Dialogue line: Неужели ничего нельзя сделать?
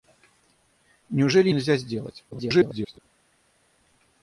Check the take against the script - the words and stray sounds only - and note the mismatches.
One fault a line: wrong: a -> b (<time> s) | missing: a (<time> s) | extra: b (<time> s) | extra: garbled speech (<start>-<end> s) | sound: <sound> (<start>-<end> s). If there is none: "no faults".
missing: ничего (1.5 s)
extra: garbled speech (2.3-3.0 s)